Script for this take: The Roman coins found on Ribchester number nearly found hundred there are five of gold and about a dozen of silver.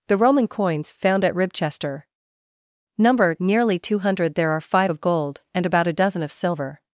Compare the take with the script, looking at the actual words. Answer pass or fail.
fail